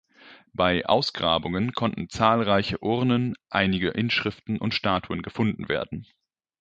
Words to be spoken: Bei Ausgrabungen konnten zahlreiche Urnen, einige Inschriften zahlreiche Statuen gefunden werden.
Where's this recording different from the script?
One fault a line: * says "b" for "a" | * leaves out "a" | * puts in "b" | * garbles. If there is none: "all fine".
* says "und" for "zahlreiche"